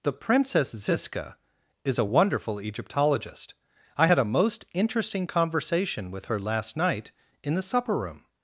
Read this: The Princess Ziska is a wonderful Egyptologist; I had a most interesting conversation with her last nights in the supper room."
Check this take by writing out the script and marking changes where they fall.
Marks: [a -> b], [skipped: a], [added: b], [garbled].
The Princess Ziska is a wonderful Egyptologist; I had a most interesting conversation with her last [nights -> night] in the supper room."